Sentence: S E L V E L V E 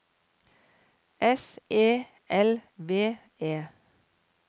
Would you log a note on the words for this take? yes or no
yes